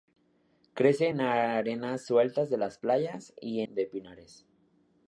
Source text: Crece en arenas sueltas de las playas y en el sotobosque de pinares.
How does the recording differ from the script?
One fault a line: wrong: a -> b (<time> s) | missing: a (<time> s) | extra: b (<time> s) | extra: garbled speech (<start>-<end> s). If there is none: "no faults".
missing: en el sotobosque (3.6 s)